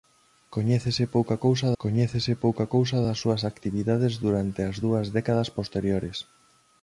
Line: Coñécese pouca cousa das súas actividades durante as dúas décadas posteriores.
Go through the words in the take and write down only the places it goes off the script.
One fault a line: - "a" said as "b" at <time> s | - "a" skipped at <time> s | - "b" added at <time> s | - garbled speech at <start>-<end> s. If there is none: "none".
- "coñécese pouca cousa" added at 1.8 s